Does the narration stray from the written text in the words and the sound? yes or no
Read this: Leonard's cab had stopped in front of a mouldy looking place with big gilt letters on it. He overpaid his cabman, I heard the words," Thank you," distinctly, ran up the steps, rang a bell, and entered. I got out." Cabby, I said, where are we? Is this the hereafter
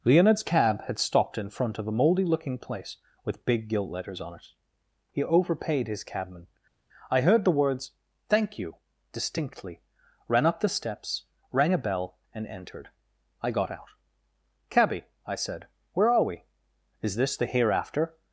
no